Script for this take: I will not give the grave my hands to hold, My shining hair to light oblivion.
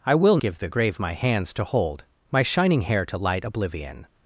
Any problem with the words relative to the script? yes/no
yes